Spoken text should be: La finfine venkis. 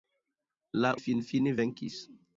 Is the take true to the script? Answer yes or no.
yes